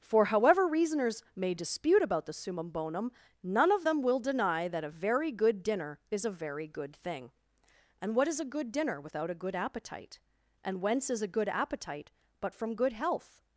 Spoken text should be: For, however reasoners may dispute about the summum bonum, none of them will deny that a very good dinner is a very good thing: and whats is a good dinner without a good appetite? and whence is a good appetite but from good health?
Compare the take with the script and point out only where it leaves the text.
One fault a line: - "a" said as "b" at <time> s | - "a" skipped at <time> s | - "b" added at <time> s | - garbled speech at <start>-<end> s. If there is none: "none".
- "whats" said as "what" at 8.2 s